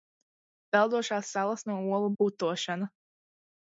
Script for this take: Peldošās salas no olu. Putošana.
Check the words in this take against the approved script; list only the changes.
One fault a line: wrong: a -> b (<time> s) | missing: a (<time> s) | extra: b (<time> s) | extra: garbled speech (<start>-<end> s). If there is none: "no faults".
no faults